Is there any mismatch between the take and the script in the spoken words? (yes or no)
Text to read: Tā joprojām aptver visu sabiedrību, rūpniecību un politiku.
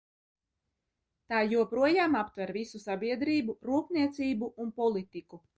no